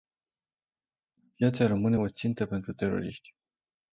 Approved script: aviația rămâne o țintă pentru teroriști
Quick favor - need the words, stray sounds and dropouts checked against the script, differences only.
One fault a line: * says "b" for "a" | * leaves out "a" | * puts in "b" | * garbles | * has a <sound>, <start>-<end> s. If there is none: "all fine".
all fine